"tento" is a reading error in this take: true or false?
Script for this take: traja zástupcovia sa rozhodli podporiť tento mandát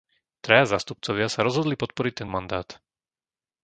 true